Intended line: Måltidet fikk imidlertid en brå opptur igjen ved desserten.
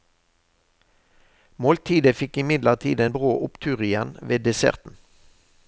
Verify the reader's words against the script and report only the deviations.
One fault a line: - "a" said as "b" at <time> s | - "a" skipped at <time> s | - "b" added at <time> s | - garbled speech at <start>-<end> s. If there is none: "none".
none